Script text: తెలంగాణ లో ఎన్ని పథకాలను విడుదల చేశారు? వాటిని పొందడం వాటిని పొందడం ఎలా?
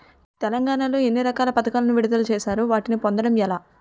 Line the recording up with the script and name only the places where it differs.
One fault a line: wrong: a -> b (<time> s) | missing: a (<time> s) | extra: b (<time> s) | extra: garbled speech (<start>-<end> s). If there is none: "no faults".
extra: రకాల (1.2 s)
missing: వాటిని పొందడం (3.4 s)